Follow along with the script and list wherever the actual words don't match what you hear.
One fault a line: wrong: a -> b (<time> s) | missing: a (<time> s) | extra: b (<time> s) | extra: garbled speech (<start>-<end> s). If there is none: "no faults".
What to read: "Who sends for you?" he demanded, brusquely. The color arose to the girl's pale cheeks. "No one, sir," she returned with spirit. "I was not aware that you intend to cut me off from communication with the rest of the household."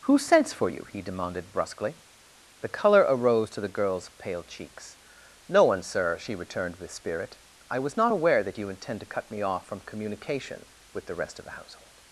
no faults